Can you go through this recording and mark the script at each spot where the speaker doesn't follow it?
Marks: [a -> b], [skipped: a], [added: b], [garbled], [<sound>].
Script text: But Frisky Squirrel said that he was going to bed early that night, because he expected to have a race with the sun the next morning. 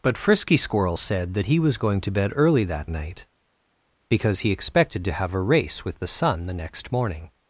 But Frisky Squirrel said that he was going to bed early that night, because he expected to have a race with the sun the next morning.